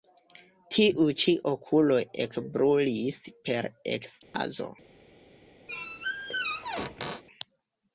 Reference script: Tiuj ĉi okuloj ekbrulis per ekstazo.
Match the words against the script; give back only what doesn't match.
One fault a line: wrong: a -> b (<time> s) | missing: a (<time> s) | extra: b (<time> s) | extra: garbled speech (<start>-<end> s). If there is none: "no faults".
no faults